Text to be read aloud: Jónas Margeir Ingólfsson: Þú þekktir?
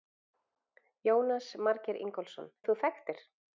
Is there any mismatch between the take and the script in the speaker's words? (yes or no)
no